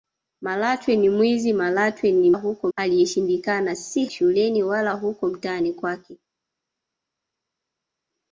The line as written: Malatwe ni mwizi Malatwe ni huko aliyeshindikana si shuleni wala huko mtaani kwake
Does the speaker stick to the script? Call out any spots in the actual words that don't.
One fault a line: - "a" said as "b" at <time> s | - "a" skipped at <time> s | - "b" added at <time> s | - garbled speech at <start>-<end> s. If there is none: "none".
none